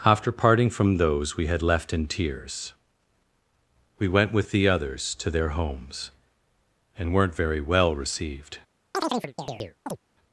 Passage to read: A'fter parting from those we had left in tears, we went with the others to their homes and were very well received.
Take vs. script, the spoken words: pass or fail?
fail